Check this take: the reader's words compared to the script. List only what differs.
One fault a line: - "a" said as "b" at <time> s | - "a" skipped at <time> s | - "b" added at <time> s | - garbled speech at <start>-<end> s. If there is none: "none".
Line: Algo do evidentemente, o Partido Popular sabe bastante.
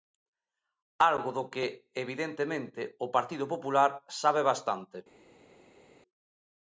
- "que" added at 1.5 s